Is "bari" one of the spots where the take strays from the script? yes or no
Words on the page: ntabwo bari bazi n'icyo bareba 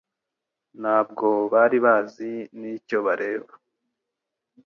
no